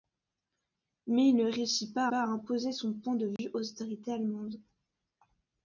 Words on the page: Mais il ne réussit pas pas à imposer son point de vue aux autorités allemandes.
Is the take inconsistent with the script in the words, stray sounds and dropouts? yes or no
yes